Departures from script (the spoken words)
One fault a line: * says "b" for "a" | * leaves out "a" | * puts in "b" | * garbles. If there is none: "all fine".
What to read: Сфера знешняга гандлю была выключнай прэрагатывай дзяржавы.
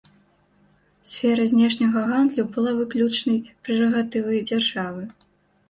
all fine